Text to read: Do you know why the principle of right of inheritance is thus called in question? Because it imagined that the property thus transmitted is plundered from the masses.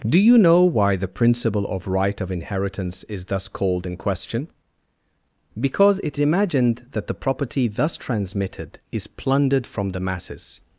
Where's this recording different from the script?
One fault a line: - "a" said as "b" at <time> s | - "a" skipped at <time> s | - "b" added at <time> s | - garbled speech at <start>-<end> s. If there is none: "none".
none